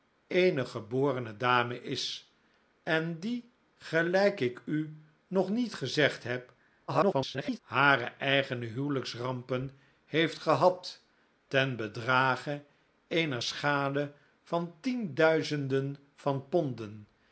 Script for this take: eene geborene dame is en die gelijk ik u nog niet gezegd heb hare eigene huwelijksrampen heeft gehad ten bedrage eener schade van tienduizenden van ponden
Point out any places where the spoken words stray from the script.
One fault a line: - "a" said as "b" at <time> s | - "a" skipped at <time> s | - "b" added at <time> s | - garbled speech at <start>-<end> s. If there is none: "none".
- garbled speech at 6.9-7.6 s